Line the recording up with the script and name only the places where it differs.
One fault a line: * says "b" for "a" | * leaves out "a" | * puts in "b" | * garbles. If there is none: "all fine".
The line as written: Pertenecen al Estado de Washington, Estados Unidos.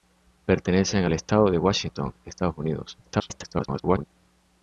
* garbles